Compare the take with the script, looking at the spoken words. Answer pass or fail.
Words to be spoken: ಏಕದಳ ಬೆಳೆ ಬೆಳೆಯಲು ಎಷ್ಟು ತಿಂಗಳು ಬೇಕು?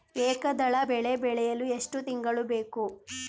pass